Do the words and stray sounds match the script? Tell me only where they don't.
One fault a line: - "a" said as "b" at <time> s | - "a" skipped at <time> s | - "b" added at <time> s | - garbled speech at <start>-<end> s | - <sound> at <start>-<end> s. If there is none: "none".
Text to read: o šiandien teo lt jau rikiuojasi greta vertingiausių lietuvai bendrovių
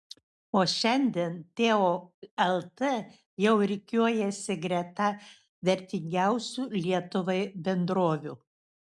none